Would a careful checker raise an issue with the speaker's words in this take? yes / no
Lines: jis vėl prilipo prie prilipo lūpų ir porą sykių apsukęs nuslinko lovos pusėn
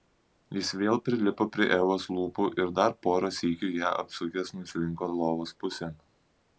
yes